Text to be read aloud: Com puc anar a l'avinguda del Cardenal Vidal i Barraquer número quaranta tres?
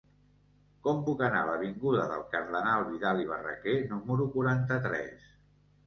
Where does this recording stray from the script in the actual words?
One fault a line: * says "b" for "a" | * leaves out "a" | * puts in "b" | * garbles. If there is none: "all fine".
all fine